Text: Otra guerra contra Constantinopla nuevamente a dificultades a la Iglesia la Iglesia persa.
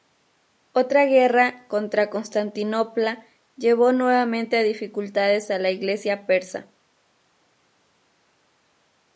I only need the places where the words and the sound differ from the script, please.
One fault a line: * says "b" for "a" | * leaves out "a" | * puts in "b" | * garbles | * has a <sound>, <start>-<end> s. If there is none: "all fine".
* puts in "llevó"
* leaves out "la Iglesia"